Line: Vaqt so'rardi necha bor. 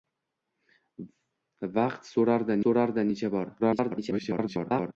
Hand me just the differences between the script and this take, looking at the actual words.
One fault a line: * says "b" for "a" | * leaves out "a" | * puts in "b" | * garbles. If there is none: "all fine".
* puts in "so'rardi"
* garbles